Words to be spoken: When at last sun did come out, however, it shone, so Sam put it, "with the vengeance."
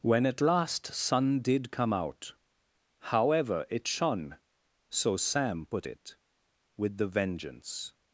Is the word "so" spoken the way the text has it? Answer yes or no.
yes